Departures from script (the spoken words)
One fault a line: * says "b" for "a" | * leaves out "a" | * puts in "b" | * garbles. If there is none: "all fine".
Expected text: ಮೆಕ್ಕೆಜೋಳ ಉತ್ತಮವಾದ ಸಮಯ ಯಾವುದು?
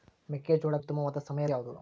all fine